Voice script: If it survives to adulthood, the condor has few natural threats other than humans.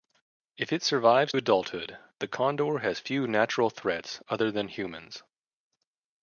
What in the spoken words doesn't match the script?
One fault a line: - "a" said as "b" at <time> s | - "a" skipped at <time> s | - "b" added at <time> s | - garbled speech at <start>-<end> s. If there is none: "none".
- "to" skipped at 1.3 s